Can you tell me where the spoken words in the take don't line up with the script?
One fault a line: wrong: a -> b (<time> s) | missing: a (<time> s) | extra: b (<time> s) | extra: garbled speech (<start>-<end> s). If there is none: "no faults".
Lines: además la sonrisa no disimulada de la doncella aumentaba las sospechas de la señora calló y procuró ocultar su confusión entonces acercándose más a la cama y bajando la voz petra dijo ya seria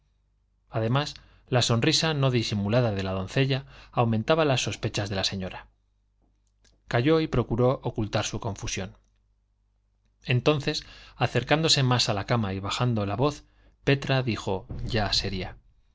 no faults